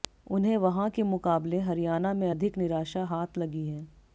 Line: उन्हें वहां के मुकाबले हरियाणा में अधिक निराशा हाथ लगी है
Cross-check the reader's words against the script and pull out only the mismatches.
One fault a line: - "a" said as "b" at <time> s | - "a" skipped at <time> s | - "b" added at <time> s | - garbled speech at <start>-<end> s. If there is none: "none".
none